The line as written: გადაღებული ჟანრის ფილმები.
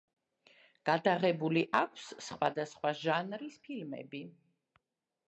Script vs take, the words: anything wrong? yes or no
yes